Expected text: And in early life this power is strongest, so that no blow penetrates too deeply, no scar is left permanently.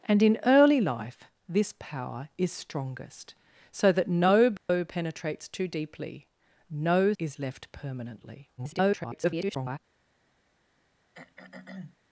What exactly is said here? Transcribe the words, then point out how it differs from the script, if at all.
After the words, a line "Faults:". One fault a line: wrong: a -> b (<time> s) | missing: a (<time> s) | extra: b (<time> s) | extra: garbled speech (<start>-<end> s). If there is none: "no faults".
And in early life this power is strongest, so that no blow penetrates too deeply, no is left permanently. [garbled]
Faults:
missing: scar (7.1 s)
extra: garbled speech (8.6-9.8 s)